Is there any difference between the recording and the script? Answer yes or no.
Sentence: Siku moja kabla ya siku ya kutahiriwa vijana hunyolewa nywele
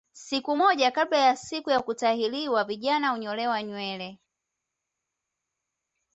no